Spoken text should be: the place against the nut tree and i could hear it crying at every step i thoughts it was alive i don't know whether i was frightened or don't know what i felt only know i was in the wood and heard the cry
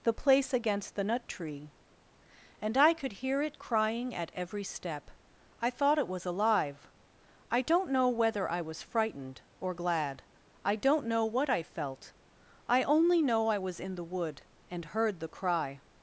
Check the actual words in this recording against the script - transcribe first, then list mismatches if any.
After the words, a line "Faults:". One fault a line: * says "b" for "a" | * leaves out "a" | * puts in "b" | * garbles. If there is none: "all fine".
the place against the nut tree and i could hear it crying at every step i thought it was alive i don't know whether i was frightened or glad i don't know what i felt i only know i was in the wood and heard the cry
Faults:
* says "thought" for "thoughts"
* puts in "glad i"
* puts in "i"